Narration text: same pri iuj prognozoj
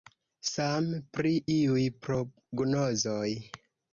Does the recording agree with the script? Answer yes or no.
yes